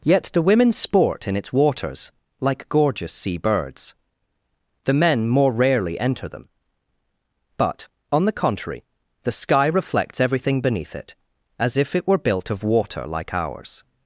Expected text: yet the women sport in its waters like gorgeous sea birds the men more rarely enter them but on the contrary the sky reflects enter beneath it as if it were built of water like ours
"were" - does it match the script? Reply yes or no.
yes